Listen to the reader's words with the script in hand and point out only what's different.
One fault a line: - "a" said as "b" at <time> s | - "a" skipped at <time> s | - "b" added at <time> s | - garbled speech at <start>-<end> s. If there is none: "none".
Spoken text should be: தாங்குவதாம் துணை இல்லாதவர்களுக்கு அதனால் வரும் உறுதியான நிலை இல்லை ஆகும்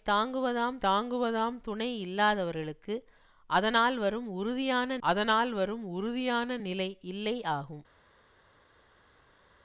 - "தாங்குவதாம்" added at 0.8 s
- "அதனால் வரும் உறுதியான" added at 5.0 s